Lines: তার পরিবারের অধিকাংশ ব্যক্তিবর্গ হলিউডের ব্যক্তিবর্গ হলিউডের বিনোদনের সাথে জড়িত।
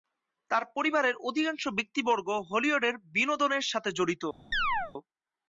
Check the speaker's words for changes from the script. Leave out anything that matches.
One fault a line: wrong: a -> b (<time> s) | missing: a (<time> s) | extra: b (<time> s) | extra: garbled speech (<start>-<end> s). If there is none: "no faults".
missing: ব্যক্তিবর্গ হলিউডের (3.0 s)